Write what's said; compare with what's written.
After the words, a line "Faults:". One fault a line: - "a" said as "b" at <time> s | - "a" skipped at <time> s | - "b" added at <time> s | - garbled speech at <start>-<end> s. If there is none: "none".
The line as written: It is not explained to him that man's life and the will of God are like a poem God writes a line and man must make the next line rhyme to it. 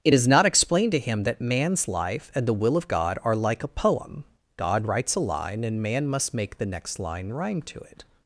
It is not explained to him that man's life and the will of God are like a poem God writes a line and man must make the next line rhyme to it.
Faults:
none